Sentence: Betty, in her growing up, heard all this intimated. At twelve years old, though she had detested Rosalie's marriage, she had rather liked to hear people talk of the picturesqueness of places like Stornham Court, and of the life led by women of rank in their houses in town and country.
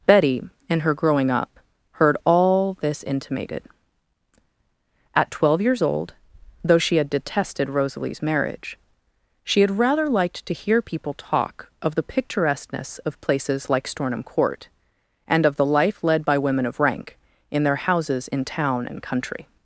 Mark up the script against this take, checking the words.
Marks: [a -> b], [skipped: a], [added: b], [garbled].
Betty, in her growing up, heard all this intimated. At twelve years old, though she had detested Rosalie's marriage, she had rather liked to hear people talk of the picturesqueness of places like Stornham Court, and of the life led by women of rank in their houses in town and country.